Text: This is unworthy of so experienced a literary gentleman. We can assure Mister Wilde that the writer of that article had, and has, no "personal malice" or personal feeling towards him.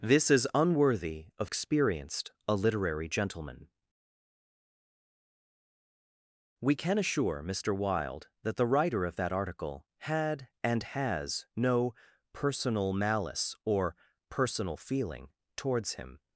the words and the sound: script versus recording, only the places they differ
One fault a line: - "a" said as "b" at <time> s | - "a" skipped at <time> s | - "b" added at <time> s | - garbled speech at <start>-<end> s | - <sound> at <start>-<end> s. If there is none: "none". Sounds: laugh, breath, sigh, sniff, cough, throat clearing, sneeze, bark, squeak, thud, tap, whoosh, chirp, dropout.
- "so" skipped at 1.5 s